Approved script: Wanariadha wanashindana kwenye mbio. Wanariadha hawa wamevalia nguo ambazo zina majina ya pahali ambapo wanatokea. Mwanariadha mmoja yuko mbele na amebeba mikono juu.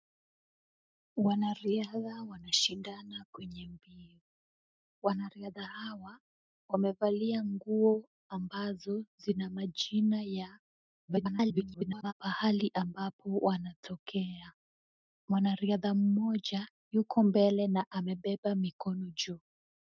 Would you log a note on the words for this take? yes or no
yes